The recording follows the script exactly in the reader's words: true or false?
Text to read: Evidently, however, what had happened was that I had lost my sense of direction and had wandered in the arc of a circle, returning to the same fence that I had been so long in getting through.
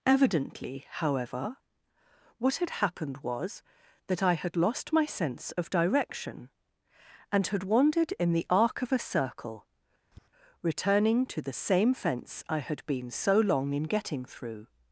false